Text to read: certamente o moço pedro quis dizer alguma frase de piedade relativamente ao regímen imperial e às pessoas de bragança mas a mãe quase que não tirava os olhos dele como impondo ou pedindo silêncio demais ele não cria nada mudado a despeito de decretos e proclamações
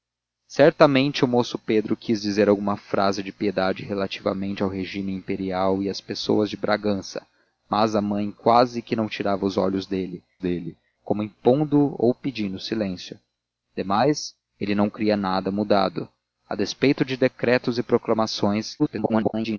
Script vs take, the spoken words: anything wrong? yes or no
yes